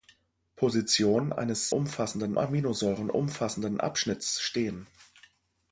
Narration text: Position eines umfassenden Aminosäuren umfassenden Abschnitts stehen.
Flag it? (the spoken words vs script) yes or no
no